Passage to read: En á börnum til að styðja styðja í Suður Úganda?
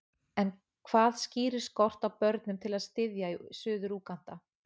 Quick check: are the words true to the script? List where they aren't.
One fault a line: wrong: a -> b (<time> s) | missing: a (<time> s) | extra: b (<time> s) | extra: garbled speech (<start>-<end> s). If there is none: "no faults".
extra: hvað skýrir skort (0.9 s)
missing: styðja (3.3 s)